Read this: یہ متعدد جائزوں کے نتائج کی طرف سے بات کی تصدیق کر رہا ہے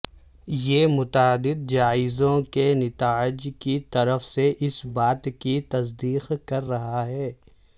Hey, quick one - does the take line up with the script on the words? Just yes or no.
no